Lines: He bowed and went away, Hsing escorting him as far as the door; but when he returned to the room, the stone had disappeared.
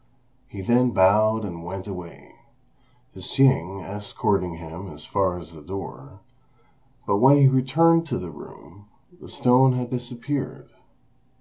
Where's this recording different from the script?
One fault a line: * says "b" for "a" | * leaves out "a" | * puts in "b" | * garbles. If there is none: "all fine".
* puts in "then"